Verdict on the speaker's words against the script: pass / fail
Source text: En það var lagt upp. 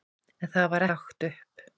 pass